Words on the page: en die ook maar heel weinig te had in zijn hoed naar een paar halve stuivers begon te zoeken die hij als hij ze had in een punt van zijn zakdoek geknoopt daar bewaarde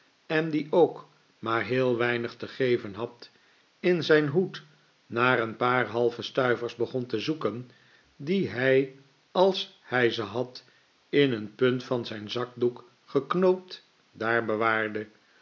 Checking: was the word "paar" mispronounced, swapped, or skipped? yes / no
no